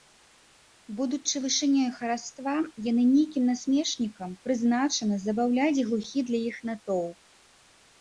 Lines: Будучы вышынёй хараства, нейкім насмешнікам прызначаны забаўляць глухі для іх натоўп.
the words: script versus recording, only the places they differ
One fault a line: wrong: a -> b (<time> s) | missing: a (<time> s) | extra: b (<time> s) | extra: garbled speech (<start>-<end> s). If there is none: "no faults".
extra: яны (2.9 s)